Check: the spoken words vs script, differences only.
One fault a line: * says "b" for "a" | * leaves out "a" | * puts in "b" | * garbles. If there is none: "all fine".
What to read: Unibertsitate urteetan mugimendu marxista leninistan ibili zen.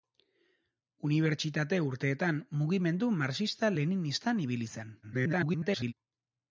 * garbles